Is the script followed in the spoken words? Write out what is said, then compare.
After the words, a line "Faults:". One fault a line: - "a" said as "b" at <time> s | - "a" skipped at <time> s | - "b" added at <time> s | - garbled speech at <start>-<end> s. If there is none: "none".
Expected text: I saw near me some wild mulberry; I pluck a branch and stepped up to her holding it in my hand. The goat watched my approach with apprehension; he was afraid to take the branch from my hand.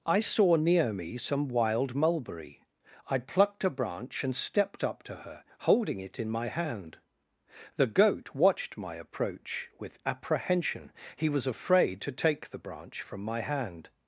I saw near me some wild mulberry; I plucked a branch and stepped up to her holding it in my hand. The goat watched my approach with apprehension; he was afraid to take the branch from my hand.
Faults:
- "pluck" said as "plucked" at 3.2 s